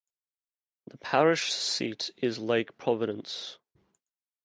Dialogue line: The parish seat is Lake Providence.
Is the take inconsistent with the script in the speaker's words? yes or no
no